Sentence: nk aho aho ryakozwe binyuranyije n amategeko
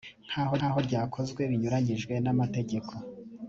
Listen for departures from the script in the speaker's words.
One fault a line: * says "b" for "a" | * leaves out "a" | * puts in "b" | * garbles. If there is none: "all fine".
all fine